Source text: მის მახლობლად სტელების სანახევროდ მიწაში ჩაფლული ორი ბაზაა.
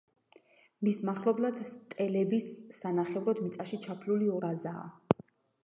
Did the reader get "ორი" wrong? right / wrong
wrong